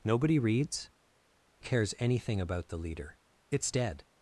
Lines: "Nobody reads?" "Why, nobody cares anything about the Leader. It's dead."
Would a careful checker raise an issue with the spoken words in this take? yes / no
yes